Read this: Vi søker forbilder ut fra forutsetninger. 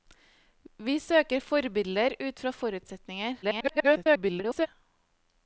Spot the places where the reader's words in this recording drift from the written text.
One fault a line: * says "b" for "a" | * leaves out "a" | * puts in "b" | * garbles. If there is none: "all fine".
* garbles